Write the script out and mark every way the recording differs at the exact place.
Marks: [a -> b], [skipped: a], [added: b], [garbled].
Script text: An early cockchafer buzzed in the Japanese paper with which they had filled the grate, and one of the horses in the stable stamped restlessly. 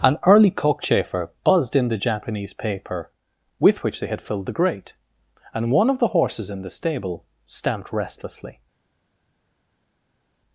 An early cockchafer buzzed in the Japanese paper with which they had filled the grate, and one of the horses in the stable stamped restlessly.